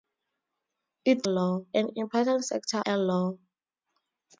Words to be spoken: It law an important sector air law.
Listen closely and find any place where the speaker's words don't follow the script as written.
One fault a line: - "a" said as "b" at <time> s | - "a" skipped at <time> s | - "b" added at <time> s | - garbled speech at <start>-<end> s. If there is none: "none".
none